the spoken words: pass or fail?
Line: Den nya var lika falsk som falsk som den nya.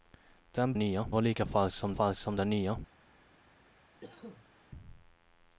pass